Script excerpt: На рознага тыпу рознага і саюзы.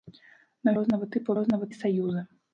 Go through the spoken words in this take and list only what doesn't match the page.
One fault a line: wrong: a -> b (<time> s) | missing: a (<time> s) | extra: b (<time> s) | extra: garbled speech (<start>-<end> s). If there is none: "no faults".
no faults